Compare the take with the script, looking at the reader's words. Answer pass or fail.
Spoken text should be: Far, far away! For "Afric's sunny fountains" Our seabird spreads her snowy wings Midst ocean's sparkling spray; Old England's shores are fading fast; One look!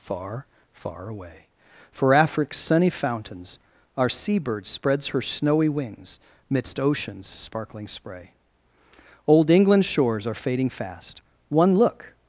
pass